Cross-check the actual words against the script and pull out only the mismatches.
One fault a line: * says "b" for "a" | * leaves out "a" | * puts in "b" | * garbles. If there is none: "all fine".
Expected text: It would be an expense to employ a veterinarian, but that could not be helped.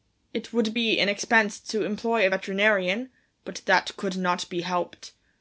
all fine